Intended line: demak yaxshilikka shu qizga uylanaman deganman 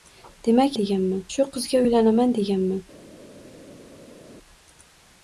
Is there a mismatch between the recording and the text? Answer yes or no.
yes